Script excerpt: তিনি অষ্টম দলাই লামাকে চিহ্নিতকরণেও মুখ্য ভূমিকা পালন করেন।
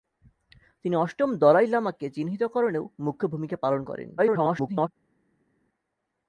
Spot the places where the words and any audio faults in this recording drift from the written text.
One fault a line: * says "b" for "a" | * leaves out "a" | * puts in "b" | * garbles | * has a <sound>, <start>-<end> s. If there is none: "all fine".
* garbles